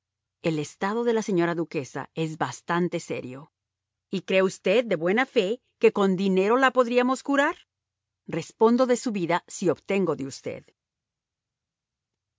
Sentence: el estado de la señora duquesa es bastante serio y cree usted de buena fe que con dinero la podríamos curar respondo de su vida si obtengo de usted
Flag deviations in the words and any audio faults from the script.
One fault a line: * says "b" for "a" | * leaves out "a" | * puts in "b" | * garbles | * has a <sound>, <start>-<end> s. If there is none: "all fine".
all fine